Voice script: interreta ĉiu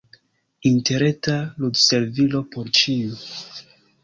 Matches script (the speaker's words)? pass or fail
fail